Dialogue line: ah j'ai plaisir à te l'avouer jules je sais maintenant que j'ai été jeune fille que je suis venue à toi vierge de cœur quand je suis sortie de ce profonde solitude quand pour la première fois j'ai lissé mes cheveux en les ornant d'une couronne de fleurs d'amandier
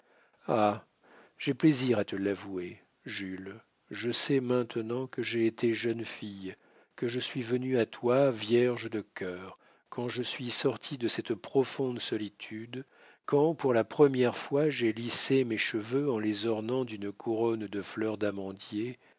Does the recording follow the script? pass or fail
fail